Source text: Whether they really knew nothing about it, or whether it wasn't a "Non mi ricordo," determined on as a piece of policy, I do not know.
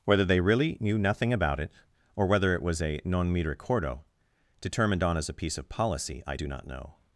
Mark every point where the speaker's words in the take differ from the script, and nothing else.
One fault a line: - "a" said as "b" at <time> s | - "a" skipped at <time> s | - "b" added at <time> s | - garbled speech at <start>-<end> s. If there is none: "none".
- "wasn't" said as "was" at 2.6 s